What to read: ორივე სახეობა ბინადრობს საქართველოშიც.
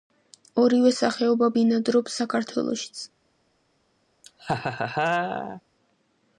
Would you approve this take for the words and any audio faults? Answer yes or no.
no